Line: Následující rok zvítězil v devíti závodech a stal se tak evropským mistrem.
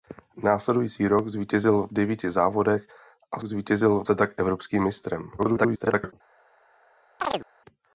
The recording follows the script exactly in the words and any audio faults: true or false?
false